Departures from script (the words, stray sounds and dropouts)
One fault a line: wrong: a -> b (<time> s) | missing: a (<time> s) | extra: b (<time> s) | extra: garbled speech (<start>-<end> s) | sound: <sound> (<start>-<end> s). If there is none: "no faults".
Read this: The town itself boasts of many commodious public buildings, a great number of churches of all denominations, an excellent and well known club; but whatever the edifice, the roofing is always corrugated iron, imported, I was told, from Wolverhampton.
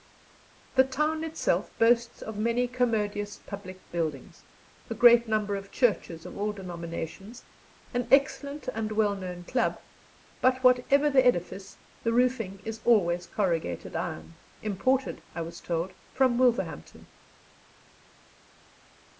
no faults